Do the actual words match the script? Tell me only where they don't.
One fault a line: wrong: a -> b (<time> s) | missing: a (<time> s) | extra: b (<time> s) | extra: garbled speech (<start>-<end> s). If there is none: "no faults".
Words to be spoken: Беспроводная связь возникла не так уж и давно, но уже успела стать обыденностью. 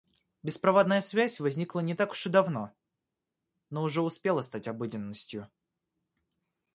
no faults